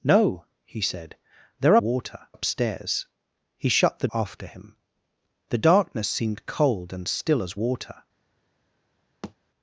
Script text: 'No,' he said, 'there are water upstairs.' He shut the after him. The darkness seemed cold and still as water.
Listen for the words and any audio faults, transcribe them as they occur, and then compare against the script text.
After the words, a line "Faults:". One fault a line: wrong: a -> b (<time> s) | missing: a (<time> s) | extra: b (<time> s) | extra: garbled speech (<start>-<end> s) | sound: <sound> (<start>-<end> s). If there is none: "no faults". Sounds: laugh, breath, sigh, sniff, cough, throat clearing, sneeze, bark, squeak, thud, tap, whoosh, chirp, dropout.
'No,' he said, 'there are water upstairs.' He shut the after him. The darkness seemed cold and still as water.
Faults:
sound: thud (9.2-9.3 s)